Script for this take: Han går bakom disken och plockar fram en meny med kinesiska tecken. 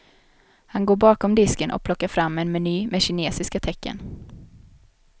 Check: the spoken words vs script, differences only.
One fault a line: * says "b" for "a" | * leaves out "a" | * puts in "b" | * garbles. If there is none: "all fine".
all fine